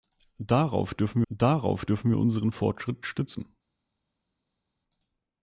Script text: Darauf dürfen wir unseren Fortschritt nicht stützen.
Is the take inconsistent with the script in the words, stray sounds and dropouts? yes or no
yes